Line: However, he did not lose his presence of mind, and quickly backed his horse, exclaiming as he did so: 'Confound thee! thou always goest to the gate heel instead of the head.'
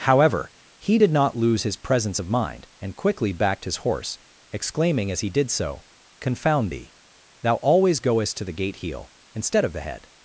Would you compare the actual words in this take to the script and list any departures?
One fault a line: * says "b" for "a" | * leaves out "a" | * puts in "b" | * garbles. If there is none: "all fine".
all fine